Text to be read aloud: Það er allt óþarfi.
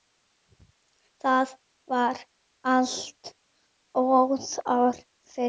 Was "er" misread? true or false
true